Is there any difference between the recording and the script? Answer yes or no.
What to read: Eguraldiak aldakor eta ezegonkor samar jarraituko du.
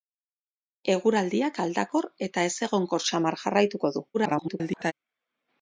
yes